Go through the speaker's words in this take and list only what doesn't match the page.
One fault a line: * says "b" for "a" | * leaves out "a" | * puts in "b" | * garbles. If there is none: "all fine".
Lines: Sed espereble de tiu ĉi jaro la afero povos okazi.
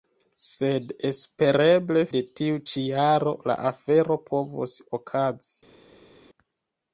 all fine